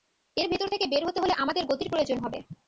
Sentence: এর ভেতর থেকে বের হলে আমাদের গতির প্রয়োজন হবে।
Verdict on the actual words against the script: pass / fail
fail